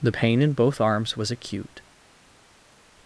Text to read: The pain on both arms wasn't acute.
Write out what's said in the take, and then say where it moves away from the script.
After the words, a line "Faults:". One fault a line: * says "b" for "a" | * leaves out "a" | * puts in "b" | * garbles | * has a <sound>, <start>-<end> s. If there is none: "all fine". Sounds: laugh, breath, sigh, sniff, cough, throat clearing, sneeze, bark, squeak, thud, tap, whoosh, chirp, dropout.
The pain in both arms was acute.
Faults:
* says "in" for "on"
* says "was" for "wasn't"